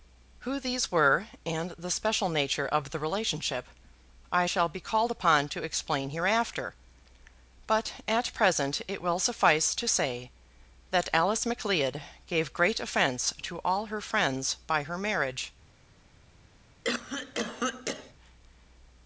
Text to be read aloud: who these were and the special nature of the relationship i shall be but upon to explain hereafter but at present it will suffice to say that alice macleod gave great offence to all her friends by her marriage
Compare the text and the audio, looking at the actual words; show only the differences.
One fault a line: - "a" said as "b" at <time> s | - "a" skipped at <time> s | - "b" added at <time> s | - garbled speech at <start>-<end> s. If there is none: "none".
- "but" said as "called" at 4.8 s